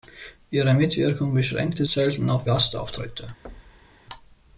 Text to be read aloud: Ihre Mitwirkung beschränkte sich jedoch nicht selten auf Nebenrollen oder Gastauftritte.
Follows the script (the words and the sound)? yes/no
no